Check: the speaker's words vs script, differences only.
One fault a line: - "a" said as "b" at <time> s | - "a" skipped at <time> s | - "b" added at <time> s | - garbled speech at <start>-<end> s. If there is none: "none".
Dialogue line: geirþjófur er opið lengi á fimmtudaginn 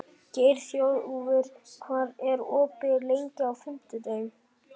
- "hvað" added at 1.9 s